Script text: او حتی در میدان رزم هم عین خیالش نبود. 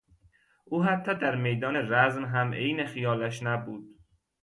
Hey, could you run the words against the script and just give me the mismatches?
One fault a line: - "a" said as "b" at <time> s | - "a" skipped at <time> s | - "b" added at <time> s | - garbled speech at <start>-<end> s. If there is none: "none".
none